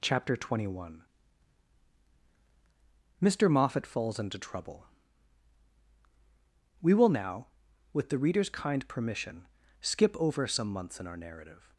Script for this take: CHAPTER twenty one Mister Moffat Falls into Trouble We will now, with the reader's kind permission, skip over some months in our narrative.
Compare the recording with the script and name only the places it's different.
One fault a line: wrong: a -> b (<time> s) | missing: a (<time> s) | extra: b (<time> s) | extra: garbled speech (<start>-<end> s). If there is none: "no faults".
no faults